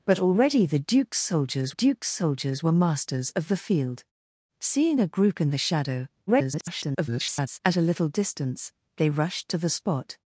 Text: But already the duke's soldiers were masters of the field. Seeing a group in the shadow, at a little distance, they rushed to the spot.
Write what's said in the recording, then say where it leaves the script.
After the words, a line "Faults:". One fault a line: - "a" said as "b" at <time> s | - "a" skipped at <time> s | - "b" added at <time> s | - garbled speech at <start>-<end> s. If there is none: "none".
But already the duke's soldiers duke's soldiers were masters of the field. Seeing a group in the shadow, [garbled] at a little distance, they rushed to the spot.
Faults:
- "duke's soldiers" added at 1.7 s
- garbled speech at 6.3-7.6 s